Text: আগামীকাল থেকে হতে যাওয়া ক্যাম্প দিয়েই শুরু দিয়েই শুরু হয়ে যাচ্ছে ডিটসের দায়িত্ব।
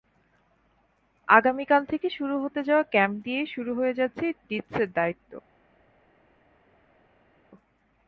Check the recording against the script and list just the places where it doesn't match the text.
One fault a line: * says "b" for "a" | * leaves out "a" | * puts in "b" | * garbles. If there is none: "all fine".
* puts in "শুরু"
* leaves out "দিয়েই শুরু"